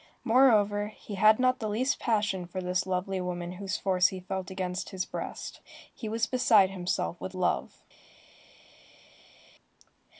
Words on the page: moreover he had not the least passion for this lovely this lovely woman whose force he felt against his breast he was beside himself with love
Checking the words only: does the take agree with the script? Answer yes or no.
no